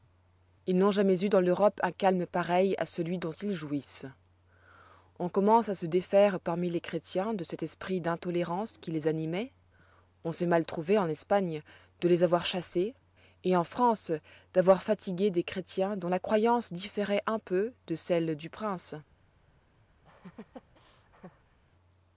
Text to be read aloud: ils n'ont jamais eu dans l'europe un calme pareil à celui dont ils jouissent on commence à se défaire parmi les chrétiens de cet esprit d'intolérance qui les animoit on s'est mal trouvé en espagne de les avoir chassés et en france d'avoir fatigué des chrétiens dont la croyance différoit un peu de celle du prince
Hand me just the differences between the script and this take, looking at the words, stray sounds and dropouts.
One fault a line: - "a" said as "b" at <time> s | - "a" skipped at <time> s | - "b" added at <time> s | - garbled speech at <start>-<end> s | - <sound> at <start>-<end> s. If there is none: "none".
- laugh at 20.0-21.6 s